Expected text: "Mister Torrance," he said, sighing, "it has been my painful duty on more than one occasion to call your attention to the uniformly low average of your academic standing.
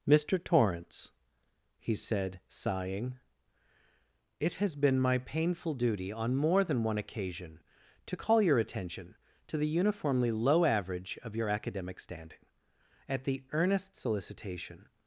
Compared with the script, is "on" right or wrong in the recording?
right